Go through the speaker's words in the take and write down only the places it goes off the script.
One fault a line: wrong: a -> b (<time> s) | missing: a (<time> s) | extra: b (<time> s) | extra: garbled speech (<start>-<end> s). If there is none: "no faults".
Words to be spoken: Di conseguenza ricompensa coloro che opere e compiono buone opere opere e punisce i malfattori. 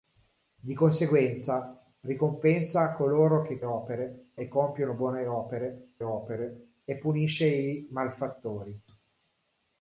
no faults